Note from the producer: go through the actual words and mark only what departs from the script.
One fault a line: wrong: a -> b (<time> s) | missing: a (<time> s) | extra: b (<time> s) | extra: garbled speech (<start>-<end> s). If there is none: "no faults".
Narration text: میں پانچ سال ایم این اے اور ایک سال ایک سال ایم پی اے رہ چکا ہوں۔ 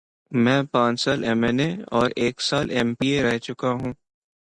missing: ایک سال (2.6 s)